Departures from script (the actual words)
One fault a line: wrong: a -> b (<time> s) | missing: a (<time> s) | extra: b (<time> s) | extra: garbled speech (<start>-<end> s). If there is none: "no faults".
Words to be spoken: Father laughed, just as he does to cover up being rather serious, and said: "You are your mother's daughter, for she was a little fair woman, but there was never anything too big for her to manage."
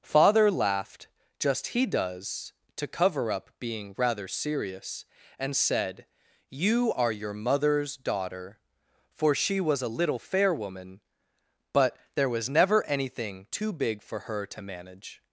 missing: as (1.7 s)